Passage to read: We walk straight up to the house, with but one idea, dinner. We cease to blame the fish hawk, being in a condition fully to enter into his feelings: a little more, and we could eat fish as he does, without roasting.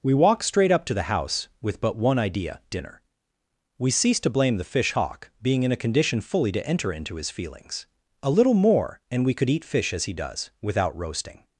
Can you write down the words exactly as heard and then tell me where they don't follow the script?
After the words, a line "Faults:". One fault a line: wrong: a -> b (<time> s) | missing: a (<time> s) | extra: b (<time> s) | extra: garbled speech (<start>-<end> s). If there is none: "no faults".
We walk straight up to the house, with but one idea, dinner. We cease to blame the fish hawk, being in a condition fully to enter into his feelings: a little more, and we could eat fish as he does, without roasting.
Faults:
no faults